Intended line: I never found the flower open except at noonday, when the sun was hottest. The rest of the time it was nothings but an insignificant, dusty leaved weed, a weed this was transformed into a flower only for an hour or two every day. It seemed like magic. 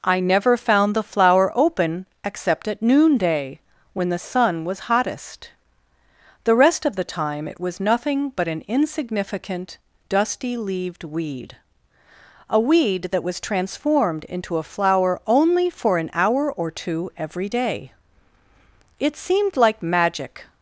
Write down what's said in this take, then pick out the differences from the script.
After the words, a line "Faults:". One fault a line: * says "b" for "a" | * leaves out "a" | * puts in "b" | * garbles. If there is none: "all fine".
I never found the flower open except at noonday, when the sun was hottest. The rest of the time it was nothing but an insignificant, dusty leaved weed, a weed that was transformed into a flower only for an hour or two every day. It seemed like magic.
Faults:
* says "nothing" for "nothings"
* says "that" for "this"